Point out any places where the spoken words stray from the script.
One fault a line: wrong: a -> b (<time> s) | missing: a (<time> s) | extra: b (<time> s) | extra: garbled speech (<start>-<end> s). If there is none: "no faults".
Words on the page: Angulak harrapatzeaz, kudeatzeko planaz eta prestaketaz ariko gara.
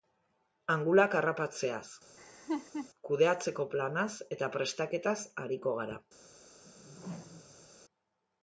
no faults